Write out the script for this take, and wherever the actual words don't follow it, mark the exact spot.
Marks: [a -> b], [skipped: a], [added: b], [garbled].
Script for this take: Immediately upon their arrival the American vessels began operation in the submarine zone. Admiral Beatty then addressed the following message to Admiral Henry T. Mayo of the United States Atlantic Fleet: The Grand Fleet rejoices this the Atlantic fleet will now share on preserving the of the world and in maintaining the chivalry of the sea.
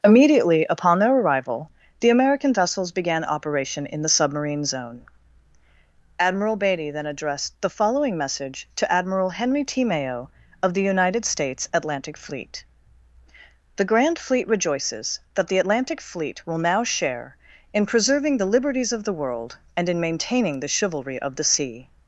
Immediately upon their arrival the American vessels began operation in the submarine zone. Admiral Beatty then addressed the following message to Admiral Henry T. Mayo of the United States Atlantic Fleet: The Grand Fleet rejoices [this -> that] the Atlantic fleet will now share [on -> in] preserving the [added: liberties] of the world and in maintaining the chivalry of the sea.